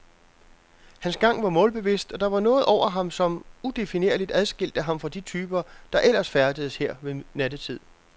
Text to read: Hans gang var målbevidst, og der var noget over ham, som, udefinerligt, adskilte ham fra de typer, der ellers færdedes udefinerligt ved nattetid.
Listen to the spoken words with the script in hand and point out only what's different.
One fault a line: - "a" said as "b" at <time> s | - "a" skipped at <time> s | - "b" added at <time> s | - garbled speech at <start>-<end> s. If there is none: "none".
- "udefinerligt" said as "her" at 6.8 s